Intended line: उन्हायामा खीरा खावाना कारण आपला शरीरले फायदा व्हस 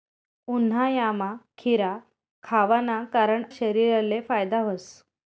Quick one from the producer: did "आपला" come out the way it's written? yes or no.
no